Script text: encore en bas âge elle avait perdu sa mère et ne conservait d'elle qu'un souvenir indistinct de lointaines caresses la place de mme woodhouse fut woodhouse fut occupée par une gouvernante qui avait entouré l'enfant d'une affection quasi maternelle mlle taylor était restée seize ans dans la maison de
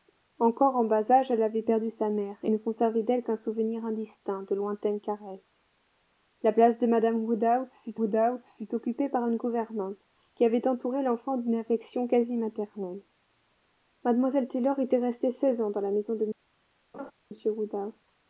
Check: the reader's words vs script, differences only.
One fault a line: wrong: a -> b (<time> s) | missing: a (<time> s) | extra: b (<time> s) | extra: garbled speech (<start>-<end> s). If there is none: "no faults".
no faults